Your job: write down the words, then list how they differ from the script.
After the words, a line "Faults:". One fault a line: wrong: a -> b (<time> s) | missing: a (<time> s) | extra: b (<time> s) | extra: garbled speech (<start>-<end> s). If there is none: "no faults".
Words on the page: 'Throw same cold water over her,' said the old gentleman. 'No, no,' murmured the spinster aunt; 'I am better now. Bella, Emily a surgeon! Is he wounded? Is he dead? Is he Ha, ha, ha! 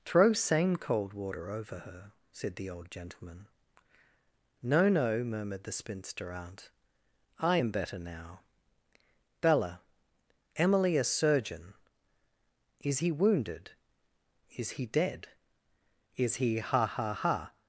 'Throw same cold water over her,' said the old gentleman. 'No, no,' murmured the spinster aunt; 'I am better now. Bella, Emily a surgeon! Is he wounded? Is he dead? Is he Ha, ha, ha!
Faults:
no faults